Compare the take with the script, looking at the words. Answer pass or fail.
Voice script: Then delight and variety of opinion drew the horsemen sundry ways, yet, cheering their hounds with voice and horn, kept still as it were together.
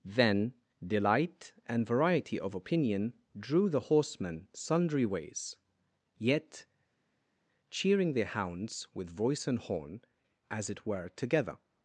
fail